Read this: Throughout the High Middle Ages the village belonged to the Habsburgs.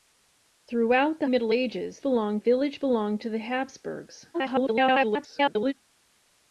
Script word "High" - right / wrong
wrong